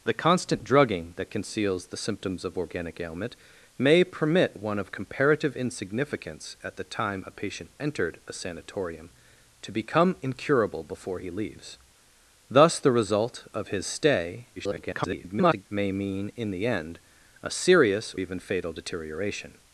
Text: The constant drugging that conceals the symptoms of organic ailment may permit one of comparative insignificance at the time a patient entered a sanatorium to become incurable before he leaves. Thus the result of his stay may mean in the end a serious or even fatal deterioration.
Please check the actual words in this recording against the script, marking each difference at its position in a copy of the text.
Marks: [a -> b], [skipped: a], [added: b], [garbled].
The constant drugging that conceals the symptoms of organic ailment may permit one of comparative insignificance at the time a patient entered a sanatorium to become incurable before he leaves. Thus the result of his stay [garbled] may mean in the end a serious [skipped: or] even fatal deterioration.